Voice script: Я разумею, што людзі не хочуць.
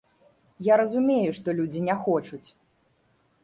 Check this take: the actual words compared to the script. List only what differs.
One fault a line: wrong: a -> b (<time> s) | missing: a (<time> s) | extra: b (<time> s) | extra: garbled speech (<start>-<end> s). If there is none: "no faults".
no faults